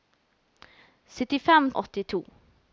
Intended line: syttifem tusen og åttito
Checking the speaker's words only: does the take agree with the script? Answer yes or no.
no